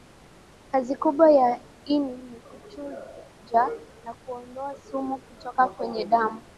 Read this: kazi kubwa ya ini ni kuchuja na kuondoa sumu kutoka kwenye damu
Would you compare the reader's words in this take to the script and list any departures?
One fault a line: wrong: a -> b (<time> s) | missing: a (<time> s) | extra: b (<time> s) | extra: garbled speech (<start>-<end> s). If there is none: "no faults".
no faults